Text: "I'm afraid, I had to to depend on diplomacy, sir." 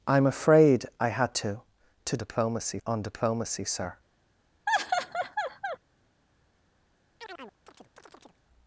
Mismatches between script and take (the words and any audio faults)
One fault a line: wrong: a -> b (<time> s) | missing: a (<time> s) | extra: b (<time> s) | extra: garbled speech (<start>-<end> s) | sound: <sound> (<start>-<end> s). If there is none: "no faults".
wrong: depend -> diplomacy (2.2 s)
sound: laugh (4.7-5.8 s)
sound: chirp (7.2-8.4 s)